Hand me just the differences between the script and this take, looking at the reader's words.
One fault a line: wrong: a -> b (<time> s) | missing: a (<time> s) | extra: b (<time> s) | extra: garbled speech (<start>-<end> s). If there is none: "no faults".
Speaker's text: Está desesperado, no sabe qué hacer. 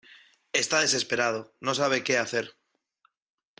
no faults